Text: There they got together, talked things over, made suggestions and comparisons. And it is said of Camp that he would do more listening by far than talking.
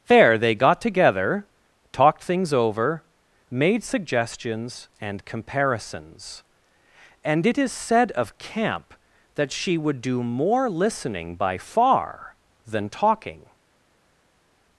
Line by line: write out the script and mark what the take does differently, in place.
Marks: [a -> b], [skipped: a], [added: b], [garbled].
There they got together, talked things over, made suggestions and comparisons. And it is said of Camp that [he -> she] would do more listening by far than talking.